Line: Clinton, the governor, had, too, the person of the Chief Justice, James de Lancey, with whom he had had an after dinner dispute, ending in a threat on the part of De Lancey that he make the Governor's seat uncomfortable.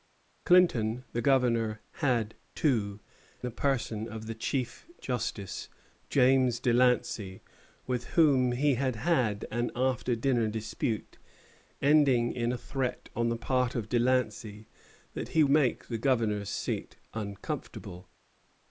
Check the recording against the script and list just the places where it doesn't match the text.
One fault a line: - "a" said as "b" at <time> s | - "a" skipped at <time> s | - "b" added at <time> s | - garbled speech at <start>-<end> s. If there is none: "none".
none